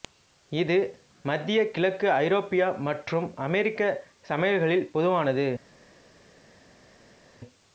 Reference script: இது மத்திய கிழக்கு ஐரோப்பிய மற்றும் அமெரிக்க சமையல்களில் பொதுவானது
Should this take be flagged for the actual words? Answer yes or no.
no